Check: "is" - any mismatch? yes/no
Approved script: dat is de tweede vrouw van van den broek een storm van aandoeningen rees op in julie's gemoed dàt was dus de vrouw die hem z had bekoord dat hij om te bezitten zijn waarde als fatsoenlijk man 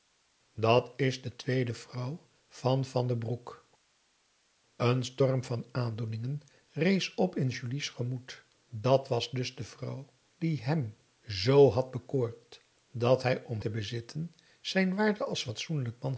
no